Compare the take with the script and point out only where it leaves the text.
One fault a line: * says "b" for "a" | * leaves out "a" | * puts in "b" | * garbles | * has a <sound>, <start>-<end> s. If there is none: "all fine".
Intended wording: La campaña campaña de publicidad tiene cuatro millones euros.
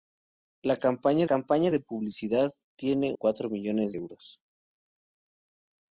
all fine